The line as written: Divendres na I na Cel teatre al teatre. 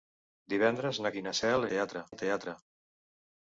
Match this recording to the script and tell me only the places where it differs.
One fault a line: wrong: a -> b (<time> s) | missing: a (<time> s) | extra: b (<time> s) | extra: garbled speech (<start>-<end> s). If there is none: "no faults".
no faults